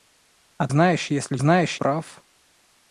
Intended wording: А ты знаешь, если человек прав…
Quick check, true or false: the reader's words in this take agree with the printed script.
false